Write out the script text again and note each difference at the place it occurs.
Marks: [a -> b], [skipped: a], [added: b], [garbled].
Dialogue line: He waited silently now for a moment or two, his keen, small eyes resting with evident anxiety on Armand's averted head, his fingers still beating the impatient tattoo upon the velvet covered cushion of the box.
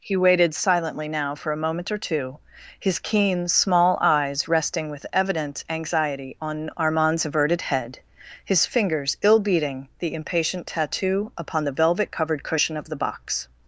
He waited silently now for a moment or two, his keen, small eyes resting with evident anxiety on Armand's averted head, his fingers [still -> ill] beating the impatient tattoo upon the velvet covered cushion of the box.